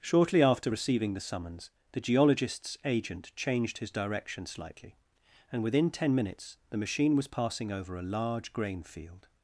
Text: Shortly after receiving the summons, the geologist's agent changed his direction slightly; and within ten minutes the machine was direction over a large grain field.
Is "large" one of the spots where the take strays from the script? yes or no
no